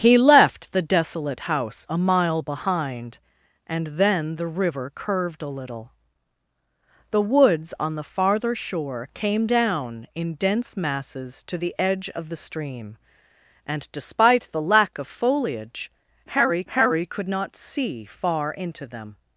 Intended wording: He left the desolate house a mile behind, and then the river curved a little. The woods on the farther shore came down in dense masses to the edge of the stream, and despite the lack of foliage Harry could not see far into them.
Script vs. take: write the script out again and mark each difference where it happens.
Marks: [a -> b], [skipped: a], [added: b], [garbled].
He left the desolate house a mile behind, and then the river curved a little. The woods on the farther shore came down in dense masses to the edge of the stream, and despite the lack of foliage Harry [added: Harry] could not see far into them.